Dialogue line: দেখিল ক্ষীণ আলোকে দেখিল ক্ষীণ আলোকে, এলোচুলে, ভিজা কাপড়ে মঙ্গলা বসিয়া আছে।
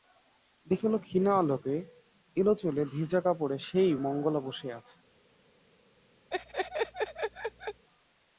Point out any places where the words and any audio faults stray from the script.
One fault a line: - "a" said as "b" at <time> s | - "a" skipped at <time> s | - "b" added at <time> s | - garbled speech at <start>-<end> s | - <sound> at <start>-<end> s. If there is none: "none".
- "দেখিল ক্ষীণ আলোকে" skipped at 1.8 s
- "সেই" added at 3.6 s
- laugh at 6.3-7.8 s